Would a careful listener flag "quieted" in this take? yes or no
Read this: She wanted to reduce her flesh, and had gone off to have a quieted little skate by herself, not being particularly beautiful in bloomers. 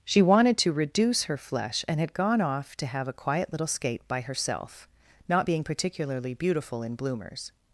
yes